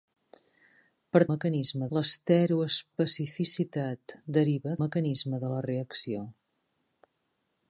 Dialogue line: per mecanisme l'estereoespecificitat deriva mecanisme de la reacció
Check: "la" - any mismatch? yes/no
no